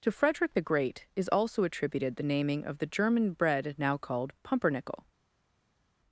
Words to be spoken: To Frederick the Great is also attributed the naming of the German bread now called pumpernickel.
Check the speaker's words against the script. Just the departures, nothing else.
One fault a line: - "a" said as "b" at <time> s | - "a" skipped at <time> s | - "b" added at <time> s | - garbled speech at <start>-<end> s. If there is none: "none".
none